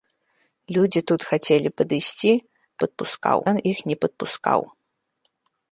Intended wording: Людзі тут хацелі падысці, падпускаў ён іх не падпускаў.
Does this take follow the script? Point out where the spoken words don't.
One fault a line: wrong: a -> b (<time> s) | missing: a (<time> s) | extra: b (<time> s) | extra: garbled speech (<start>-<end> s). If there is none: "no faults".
no faults